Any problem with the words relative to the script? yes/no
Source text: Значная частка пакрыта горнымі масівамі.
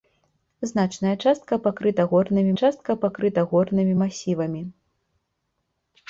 yes